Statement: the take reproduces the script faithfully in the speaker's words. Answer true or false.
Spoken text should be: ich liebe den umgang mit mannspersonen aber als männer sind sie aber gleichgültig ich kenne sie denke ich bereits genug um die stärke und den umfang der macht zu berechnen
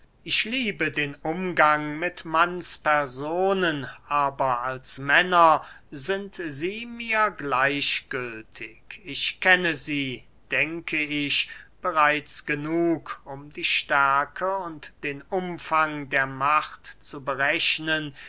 false